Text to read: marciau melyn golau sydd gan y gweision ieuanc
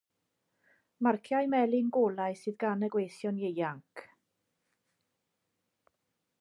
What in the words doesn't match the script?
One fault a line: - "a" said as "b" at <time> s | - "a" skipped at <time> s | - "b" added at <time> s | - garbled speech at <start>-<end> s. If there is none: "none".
none